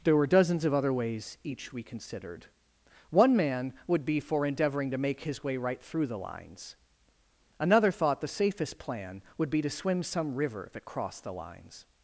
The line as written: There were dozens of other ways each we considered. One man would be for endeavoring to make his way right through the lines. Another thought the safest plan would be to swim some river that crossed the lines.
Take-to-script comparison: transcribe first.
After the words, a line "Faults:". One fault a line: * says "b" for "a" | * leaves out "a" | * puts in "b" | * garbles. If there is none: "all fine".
There were dozens of other ways each we considered. One man would be for endeavoring to make his way right through the lines. Another thought the safest plan would be to swim some river that crossed the lines.
Faults:
all fine